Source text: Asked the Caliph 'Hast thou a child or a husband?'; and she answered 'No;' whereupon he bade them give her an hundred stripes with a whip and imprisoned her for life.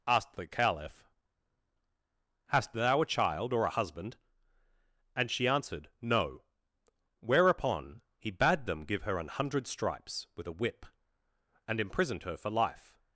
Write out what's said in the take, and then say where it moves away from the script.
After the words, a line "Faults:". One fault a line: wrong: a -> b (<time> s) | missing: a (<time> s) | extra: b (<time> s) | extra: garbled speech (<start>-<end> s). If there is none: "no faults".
Asked the Caliph 'Hast thou a child or a husband?'; and she answered 'No;' whereupon he bade them give her an hundred stripes with a whip and imprisoned her for life.
Faults:
no faults